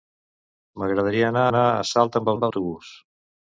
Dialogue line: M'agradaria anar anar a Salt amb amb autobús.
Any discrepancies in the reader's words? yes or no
no